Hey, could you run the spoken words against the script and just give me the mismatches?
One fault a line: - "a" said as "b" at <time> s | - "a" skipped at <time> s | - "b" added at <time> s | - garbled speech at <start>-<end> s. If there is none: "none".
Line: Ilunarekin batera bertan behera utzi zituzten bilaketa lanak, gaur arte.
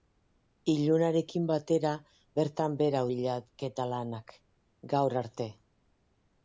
- "utzi zituzten" skipped at 3.0 s